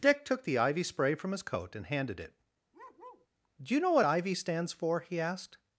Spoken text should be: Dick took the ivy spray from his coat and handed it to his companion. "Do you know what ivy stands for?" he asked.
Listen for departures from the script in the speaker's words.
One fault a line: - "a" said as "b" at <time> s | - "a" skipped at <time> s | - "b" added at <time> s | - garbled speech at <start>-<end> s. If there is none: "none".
- "to his companion" skipped at 2.4 s